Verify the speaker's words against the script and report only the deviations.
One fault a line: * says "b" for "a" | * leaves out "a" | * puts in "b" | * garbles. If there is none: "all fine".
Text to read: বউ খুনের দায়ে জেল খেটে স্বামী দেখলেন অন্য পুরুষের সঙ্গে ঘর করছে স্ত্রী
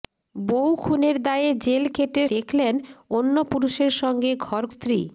* leaves out "স্বামী"
* leaves out "করছে"